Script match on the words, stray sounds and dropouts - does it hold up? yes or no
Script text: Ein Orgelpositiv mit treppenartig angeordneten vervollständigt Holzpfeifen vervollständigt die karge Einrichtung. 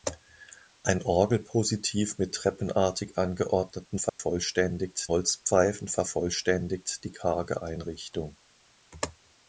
no